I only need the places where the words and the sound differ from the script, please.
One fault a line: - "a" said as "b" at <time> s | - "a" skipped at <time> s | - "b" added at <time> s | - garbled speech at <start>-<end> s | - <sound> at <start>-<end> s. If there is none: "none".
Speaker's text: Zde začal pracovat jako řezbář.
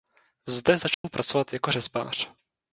- dropout at 0.9-1.0 s